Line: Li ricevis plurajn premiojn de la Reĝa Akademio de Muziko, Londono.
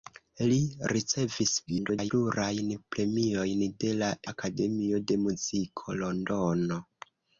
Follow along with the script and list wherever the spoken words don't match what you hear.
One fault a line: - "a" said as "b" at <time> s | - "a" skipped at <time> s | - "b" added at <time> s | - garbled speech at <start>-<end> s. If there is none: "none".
- garbled speech at 1.7-2.1 s
- "Reĝa" skipped at 4.1 s